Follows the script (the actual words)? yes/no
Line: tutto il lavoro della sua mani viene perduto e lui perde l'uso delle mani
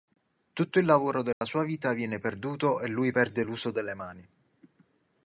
no